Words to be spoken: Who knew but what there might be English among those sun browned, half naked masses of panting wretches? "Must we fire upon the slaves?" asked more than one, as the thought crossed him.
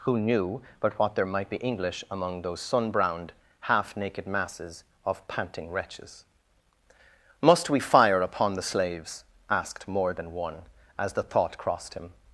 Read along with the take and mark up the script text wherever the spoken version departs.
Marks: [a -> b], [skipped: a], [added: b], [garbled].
Who knew but what there might be English among those sun browned, half naked masses of panting wretches? "Must we fire upon the slaves?" asked more than one, as the thought crossed him.